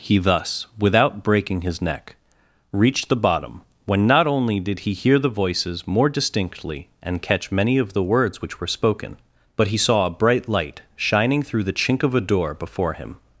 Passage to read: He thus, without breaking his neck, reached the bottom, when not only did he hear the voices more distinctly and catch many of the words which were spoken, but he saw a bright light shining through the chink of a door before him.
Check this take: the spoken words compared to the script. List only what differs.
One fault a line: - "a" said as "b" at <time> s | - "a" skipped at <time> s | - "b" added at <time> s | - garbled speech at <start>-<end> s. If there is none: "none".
none